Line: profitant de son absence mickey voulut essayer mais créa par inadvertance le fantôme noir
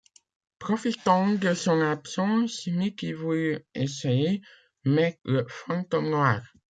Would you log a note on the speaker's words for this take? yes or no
yes